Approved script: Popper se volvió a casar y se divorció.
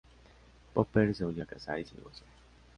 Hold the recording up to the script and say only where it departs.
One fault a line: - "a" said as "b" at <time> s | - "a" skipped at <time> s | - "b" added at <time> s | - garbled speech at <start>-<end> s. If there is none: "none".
none